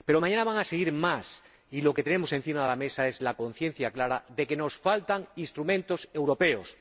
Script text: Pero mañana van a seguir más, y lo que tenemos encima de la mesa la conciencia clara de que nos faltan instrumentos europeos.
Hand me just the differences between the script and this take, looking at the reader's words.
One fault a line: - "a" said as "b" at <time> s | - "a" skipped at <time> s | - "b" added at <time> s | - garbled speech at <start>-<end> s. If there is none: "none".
- "es" added at 3.1 s